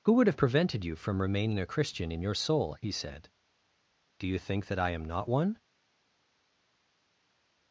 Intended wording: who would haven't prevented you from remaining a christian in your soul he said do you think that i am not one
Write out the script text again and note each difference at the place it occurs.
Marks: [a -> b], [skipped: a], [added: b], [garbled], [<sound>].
who would [haven't -> have] prevented you from remaining a christian in your soul he said do you think that i am not one